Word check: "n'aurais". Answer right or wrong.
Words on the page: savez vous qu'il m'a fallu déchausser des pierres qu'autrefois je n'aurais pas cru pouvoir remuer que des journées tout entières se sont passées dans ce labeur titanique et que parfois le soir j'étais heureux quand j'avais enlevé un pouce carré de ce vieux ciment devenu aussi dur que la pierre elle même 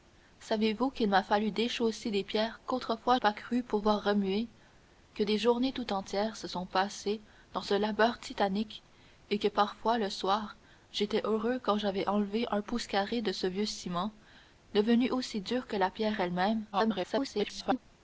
wrong